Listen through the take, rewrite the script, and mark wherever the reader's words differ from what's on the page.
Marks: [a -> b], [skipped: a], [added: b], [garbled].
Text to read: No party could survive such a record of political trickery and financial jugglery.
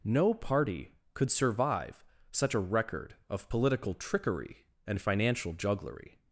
No party could survive such a record of political trickery and financial jugglery.